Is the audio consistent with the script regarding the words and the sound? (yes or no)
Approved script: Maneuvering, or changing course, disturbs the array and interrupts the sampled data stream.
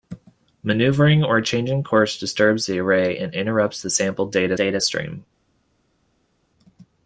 no